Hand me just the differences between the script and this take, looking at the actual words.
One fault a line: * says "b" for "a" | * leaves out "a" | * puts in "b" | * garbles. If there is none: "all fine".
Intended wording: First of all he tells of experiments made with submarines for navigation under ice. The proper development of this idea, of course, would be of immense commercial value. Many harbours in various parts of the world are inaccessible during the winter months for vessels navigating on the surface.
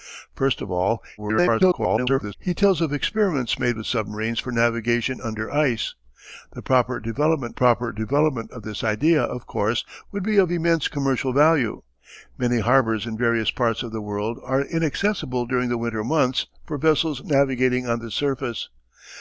* garbles
* puts in "proper development"